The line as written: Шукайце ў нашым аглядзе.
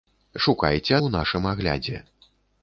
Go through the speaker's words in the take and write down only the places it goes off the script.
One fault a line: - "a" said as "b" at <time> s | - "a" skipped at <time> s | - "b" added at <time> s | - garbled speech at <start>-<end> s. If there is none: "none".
none